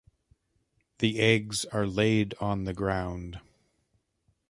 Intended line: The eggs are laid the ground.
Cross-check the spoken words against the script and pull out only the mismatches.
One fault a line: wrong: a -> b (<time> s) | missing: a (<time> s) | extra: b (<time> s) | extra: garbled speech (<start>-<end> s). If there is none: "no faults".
extra: on (2.4 s)